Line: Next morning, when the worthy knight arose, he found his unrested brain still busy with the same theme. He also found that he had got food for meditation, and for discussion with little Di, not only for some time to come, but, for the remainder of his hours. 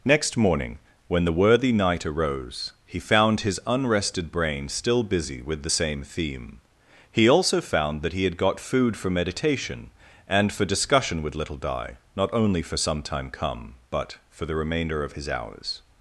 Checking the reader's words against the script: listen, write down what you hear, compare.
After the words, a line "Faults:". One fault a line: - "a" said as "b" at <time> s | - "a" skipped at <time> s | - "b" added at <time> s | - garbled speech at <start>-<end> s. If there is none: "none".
Next morning, when the worthy knight arose, he found his unrested brain still busy with the same theme. He also found that he had got food for meditation, and for discussion with little Di, not only for some time come, but, for the remainder of his hours.
Faults:
- "to" skipped at 13.3 s